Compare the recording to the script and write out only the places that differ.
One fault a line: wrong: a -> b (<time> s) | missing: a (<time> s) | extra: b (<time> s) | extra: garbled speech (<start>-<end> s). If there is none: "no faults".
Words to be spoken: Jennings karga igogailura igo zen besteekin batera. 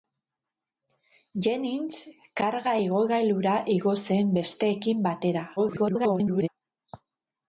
extra: garbled speech (5.6-6.5 s)